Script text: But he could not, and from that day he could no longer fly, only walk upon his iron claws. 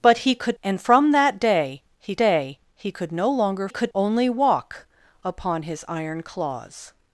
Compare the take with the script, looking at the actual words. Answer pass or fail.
fail